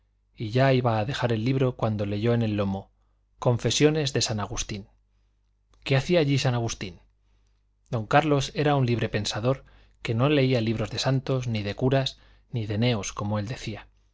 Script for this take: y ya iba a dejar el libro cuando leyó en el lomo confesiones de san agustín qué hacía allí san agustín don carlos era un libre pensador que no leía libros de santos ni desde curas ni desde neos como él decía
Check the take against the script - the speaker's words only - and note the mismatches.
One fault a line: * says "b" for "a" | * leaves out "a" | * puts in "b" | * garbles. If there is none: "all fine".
* says "de" for "desde"
* says "de" for "desde"